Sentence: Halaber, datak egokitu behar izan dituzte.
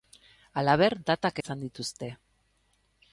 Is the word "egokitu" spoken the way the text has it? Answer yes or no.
no